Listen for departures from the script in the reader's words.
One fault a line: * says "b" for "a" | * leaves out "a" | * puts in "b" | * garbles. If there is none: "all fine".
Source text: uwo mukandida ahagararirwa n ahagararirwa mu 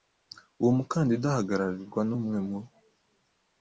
* says "umwe" for "ahagararirwa"